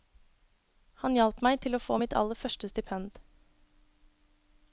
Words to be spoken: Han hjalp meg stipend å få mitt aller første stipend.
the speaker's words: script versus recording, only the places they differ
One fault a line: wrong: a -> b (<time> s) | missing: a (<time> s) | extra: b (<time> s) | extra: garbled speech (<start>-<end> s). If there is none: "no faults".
wrong: stipend -> til (1.6 s)